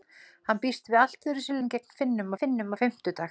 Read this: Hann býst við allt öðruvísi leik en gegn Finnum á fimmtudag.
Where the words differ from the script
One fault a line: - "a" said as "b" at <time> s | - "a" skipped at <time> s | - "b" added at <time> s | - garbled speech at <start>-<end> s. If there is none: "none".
- "leik" skipped at 1.6 s
- "Finnum" added at 2.4 s